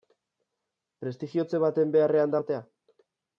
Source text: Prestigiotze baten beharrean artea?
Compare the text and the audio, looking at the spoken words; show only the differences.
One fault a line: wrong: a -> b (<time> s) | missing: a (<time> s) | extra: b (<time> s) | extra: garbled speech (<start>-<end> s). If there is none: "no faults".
no faults